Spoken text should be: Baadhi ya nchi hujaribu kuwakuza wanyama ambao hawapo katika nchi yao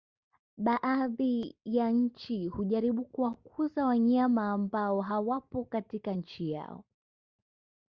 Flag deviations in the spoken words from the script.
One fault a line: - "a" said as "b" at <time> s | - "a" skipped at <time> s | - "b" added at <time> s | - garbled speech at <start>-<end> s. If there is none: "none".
none